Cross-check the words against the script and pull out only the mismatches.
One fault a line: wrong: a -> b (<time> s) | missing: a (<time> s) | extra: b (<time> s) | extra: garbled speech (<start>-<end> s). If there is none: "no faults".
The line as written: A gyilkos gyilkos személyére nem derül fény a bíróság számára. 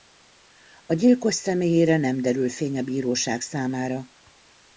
missing: gyilkos (1.3 s)